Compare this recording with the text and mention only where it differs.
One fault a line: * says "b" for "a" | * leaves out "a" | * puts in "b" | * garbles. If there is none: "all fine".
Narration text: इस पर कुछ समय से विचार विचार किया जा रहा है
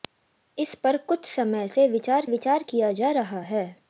all fine